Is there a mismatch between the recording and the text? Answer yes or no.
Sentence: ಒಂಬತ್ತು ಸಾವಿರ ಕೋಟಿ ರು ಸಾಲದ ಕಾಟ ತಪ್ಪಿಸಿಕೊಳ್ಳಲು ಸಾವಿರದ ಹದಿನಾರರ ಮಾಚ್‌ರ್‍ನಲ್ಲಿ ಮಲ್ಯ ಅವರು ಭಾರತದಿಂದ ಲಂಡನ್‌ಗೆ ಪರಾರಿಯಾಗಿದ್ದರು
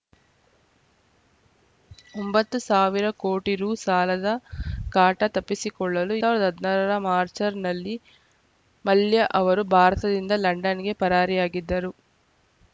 no